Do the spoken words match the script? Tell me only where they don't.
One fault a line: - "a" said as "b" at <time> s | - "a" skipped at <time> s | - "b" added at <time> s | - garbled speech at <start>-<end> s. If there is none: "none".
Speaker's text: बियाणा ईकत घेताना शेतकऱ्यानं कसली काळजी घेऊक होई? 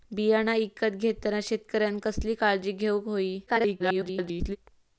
- garbled speech at 3.5-4.6 s